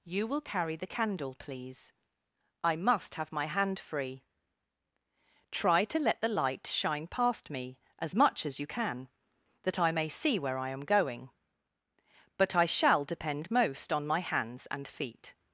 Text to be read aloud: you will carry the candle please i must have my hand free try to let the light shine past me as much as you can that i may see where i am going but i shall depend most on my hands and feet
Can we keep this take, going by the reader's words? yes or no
yes